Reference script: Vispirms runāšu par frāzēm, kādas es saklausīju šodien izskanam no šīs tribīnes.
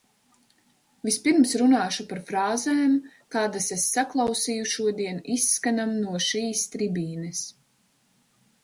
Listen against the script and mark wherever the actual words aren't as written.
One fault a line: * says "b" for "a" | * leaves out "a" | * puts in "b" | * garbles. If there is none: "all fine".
all fine